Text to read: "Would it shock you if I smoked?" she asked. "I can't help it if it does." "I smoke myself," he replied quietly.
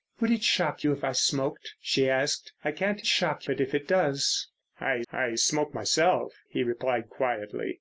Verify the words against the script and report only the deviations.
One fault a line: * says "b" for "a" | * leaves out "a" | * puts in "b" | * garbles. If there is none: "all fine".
* says "shock" for "help"
* puts in "I"